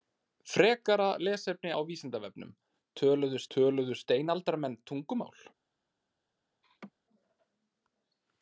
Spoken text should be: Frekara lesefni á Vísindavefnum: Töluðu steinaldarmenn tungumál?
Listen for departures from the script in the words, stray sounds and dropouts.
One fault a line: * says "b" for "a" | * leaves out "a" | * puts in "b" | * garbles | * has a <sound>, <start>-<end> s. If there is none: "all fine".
* puts in "Töluðu"
* has a laugh, 6.6-6.9 s